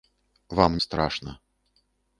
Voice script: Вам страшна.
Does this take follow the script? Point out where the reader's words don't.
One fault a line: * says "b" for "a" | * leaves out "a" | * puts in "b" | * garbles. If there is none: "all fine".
all fine